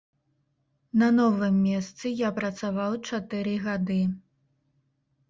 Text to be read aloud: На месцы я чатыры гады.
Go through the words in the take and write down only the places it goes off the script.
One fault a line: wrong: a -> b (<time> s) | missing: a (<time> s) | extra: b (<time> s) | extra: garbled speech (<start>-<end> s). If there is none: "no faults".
extra: новым (1.2 s)
extra: працаваў (2.4 s)